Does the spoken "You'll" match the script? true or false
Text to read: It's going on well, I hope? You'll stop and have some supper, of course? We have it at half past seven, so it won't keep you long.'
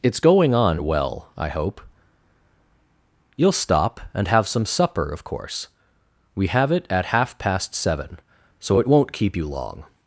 true